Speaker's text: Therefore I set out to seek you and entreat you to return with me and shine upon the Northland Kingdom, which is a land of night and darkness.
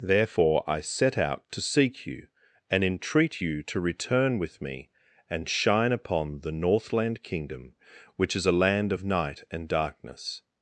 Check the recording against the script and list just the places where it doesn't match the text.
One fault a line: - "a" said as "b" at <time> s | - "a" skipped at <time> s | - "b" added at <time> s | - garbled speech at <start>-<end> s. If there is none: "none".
none